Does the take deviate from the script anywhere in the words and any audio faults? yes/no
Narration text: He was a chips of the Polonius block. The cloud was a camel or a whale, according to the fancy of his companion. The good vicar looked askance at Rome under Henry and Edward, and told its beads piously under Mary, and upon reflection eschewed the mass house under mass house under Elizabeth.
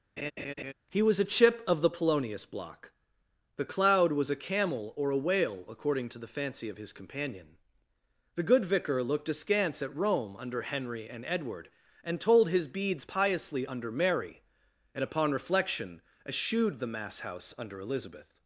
yes